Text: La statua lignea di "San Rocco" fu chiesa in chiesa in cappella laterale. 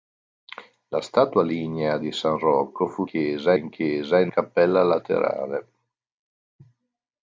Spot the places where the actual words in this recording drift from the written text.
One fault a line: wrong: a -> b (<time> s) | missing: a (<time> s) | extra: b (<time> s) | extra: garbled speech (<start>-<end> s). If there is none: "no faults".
no faults